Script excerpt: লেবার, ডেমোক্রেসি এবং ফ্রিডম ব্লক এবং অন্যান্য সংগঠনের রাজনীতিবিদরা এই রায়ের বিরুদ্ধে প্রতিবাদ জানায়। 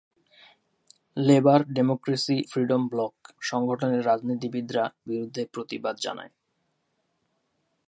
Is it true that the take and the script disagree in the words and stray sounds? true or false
true